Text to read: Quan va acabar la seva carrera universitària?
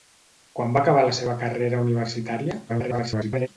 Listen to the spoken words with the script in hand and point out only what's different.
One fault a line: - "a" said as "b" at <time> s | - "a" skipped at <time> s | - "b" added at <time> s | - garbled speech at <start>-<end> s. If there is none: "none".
- garbled speech at 2.7-3.5 s